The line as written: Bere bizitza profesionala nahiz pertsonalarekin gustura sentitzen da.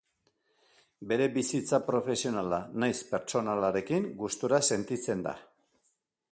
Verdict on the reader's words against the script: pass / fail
pass